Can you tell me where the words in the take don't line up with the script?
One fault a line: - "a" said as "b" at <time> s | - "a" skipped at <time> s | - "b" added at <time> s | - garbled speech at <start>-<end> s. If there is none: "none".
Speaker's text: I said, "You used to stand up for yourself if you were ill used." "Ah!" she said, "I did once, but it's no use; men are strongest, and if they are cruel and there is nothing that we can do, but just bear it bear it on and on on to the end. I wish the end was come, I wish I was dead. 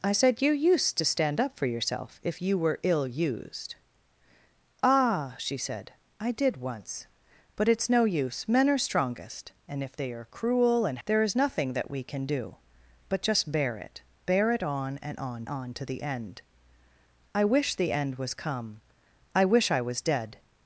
none